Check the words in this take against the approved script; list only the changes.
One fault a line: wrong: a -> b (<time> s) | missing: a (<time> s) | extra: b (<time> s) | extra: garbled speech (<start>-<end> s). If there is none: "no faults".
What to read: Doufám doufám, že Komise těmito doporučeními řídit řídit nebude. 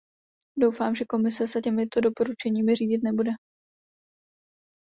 missing: doufám (0.9 s)
extra: se (1.5 s)
missing: řídit (3.0 s)